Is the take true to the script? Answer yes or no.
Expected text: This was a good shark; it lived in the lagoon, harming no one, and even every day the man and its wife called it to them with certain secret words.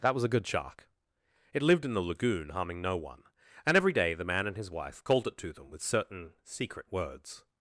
no